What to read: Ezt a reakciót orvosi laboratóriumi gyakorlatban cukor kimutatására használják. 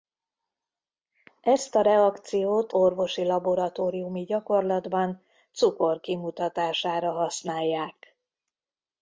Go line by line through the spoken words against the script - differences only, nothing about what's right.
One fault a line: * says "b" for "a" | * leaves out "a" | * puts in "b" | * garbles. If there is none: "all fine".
all fine